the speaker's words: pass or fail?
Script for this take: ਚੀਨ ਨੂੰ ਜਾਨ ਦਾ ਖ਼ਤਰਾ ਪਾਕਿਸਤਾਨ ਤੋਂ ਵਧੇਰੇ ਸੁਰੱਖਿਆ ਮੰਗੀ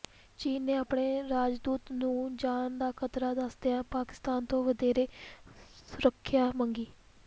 fail